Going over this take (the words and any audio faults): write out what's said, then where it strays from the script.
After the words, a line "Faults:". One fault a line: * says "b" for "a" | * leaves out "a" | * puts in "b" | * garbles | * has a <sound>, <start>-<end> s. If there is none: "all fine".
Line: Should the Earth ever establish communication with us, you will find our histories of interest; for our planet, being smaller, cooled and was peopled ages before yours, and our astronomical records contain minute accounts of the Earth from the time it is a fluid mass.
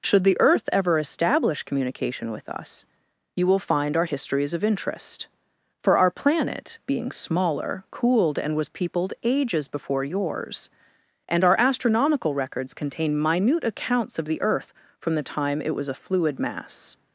Should the Earth ever establish communication with us, you will find our histories of interest; for our planet, being smaller, cooled and was peopled ages before yours, and our astronomical records contain minute accounts of the Earth from the time it was a fluid mass.
Faults:
* says "was" for "is"